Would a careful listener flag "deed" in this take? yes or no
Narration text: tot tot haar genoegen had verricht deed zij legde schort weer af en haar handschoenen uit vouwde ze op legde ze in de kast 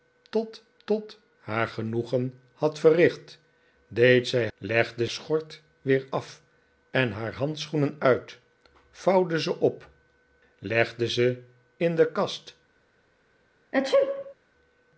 no